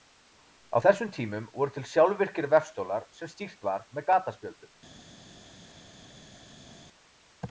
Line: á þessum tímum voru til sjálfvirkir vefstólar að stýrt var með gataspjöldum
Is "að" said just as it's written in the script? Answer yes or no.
no